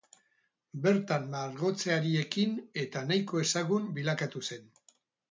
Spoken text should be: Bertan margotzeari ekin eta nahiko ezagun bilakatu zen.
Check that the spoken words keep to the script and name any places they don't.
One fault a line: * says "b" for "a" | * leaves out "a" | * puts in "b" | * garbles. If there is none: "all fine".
all fine